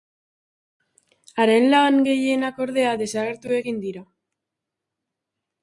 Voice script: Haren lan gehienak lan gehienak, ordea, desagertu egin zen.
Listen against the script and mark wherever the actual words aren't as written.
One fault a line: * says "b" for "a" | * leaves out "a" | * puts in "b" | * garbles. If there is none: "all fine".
* leaves out "lan gehienak"
* says "dira" for "zen"